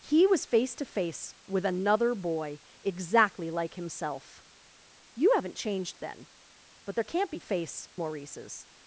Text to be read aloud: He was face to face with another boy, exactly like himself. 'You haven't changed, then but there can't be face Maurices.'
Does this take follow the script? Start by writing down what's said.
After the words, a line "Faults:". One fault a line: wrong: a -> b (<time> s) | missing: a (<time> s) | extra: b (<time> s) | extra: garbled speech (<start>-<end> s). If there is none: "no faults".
He was face to face with another boy, exactly like himself. 'You haven't changed, then but there can't be face Maurices.'
Faults:
no faults